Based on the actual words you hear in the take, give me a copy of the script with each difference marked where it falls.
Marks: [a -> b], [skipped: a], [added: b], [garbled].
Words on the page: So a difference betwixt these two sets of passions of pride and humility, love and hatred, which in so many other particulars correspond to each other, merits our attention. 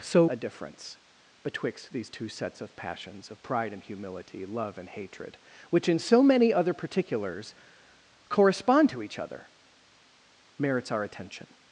So a difference betwixt these two sets of passions of pride and humility, love and hatred, which in so many other particulars correspond to each other, merits our attention.